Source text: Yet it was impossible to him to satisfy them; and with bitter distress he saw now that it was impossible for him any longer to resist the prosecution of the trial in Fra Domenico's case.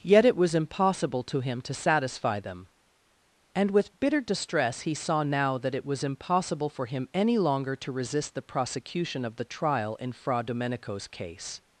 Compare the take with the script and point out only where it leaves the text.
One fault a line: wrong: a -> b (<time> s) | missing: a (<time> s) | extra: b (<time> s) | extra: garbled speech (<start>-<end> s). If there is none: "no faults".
no faults